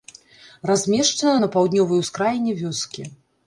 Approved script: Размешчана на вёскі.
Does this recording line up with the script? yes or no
no